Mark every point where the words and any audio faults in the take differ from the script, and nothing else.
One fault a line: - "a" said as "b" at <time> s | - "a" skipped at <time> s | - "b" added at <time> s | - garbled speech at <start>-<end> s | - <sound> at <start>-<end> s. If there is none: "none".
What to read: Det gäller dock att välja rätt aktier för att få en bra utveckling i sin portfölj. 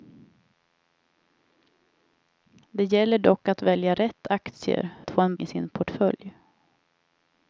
- "för" skipped at 4.9 s
- "bra utveckling" skipped at 5.3 s